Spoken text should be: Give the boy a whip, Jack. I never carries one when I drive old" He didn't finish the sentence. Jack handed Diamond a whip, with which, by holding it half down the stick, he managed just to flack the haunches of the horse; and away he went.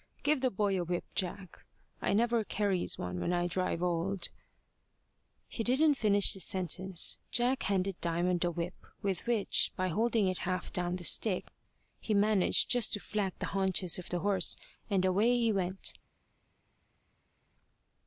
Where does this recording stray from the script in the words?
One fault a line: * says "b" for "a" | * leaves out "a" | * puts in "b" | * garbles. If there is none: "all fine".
all fine